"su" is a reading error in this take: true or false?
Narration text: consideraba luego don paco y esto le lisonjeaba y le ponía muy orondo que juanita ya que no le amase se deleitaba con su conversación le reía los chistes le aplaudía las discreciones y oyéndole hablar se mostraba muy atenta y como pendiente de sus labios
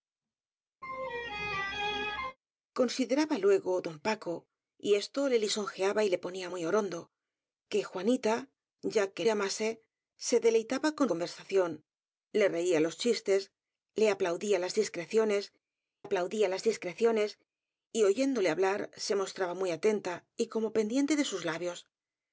true